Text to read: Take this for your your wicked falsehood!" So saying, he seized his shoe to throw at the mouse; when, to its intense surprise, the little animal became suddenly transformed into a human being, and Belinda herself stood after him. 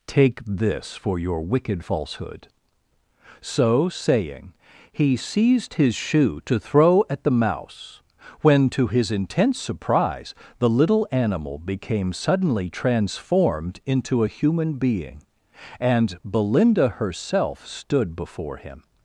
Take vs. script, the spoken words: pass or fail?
fail